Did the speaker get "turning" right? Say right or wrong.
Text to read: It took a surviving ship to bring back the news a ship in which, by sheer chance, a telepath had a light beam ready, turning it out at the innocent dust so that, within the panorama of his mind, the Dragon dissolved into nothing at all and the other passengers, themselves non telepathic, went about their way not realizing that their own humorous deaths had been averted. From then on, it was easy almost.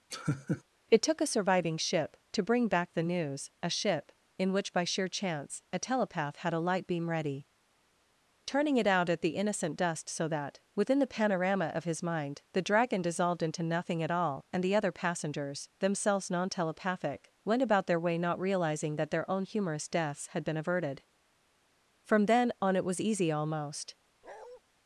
right